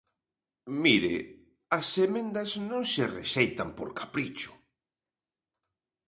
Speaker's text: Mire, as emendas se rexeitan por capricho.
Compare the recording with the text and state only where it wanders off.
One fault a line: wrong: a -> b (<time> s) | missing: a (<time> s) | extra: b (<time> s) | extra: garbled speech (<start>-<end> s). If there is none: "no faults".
extra: non (2.7 s)